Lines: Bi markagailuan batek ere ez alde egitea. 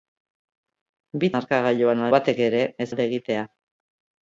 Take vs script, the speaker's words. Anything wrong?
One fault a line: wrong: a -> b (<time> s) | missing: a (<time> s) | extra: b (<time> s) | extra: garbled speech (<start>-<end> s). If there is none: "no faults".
no faults